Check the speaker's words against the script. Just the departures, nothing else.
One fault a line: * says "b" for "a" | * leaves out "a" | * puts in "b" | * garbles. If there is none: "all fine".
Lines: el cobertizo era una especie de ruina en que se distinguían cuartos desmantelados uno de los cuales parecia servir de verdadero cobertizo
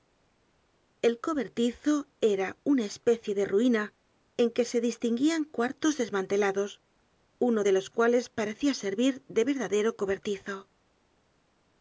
all fine